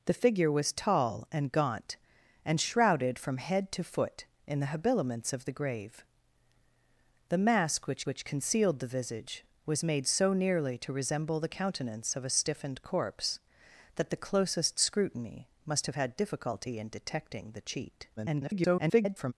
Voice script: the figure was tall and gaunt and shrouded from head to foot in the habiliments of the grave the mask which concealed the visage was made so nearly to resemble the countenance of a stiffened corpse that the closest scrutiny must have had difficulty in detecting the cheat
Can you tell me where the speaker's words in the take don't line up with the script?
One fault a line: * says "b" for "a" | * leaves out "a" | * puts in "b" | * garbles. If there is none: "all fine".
* puts in "which"
* garbles